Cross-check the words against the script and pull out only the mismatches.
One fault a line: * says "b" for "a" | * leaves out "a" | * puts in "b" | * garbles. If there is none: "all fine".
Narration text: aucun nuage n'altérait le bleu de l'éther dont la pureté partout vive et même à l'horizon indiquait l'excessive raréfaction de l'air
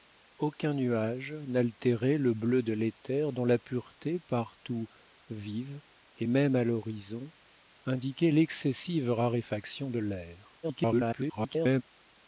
* garbles